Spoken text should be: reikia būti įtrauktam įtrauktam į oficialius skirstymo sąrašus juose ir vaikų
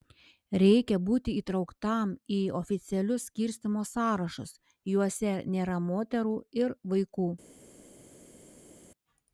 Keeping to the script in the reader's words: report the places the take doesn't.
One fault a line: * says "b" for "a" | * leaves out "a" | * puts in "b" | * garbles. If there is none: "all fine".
* leaves out "įtrauktam"
* puts in "nėra moterų"